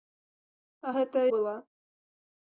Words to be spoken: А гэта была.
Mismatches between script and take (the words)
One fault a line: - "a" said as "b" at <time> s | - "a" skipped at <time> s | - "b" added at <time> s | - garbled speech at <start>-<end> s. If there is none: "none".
none